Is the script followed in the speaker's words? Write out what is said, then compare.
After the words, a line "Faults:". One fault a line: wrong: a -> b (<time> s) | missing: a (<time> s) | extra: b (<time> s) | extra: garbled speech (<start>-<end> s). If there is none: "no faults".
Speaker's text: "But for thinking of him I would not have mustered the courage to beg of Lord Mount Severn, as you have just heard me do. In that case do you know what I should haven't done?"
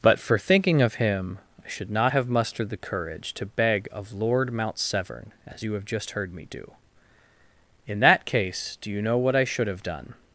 "But for thinking of him I should not have mustered the courage to beg of Lord Mount Severn, as you have just heard me do. In that case do you know what I should have done?"
Faults:
wrong: would -> should (1.7 s)
wrong: haven't -> have (9.7 s)